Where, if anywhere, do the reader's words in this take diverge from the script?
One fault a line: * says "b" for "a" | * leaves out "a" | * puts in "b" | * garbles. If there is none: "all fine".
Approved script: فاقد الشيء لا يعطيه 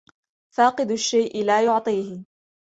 all fine